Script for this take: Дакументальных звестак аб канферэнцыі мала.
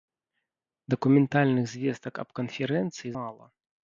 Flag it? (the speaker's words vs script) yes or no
no